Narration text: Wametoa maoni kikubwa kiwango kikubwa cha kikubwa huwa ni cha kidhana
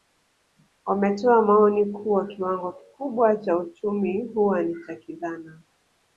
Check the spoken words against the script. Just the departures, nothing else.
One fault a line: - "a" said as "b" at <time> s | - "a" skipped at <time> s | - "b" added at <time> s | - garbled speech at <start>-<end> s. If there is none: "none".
- "kikubwa" said as "kuwa" at 1.9 s
- "kikubwa" said as "uchumi" at 3.6 s